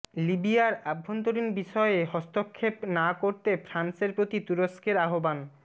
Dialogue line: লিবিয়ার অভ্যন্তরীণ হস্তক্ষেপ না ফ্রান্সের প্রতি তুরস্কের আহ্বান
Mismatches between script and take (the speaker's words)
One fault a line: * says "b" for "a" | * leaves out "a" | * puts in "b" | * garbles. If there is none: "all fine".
* puts in "বিষয়ে"
* puts in "করতে"